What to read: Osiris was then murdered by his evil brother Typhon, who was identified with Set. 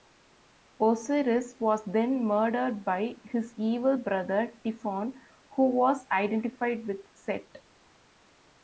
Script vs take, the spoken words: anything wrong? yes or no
no